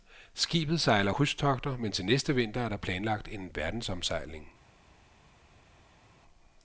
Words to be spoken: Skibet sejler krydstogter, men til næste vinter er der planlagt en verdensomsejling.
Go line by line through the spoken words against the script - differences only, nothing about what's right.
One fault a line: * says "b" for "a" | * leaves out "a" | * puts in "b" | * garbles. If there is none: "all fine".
all fine